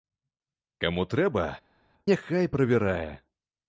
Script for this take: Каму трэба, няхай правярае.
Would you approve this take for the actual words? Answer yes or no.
yes